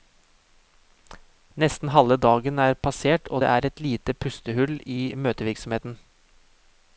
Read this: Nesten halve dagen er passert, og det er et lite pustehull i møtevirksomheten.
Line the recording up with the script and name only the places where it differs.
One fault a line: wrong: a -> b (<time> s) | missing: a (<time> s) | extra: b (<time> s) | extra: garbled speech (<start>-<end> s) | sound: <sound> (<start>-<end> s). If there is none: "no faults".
no faults